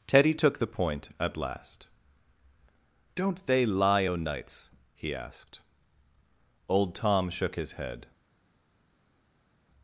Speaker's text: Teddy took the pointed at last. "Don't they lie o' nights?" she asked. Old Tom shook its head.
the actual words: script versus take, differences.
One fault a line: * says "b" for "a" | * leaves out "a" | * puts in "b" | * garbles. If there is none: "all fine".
* says "point" for "pointed"
* says "he" for "she"
* says "his" for "its"